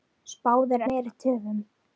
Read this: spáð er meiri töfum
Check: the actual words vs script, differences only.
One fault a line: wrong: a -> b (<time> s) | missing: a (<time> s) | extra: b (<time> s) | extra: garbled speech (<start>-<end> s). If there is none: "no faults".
no faults